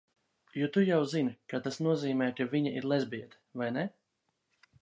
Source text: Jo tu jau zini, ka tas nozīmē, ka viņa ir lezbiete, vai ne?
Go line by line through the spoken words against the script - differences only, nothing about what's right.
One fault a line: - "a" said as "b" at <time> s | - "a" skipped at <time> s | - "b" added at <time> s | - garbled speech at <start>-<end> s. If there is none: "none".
none